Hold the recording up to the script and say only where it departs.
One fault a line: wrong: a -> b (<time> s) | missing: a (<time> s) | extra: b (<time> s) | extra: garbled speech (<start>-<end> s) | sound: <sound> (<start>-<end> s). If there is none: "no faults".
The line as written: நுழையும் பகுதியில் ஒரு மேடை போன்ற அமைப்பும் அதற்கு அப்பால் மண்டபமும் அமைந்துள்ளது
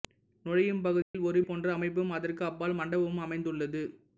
sound: dropout (1.0-1.1 s)
missing: மேடை (1.4 s)